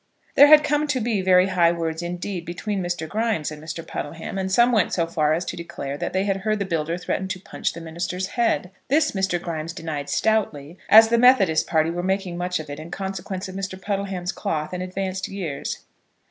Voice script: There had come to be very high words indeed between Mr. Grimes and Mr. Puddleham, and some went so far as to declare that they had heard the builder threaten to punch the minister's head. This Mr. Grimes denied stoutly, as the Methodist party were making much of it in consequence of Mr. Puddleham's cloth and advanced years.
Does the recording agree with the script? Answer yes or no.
yes